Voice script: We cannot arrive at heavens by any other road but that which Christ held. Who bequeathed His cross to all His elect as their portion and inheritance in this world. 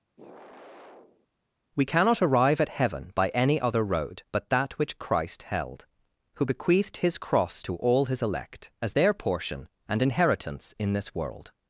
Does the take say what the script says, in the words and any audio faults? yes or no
no